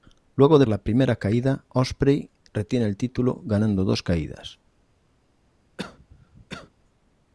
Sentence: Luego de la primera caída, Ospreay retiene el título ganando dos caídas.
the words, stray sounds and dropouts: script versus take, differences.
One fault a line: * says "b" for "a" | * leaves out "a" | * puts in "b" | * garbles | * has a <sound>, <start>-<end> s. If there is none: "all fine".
* has a cough, 5.8-6.7 s